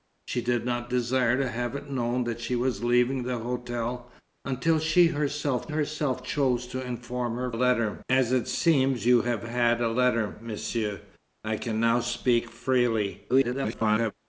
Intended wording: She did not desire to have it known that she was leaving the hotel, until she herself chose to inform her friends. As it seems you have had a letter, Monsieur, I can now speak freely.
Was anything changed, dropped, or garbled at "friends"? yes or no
yes